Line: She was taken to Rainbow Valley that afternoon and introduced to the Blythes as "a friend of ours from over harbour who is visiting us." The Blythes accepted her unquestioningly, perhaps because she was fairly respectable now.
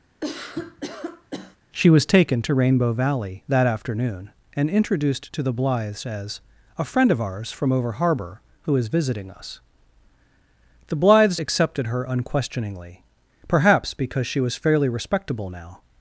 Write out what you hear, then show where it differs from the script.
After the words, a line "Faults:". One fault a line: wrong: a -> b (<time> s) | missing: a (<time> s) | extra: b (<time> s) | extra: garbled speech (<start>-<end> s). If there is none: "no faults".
She was taken to Rainbow Valley that afternoon and introduced to the Blythes as "a friend of ours from over harbour who is visiting us." The Blythes accepted her unquestioningly, perhaps because she was fairly respectable now.
Faults:
no faults